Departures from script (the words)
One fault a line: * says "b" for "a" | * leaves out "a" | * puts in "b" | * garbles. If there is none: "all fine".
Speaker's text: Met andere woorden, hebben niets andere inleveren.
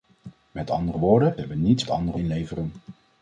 all fine